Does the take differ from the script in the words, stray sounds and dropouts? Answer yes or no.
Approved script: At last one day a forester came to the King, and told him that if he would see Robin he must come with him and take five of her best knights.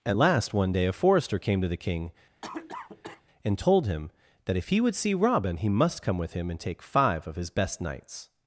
yes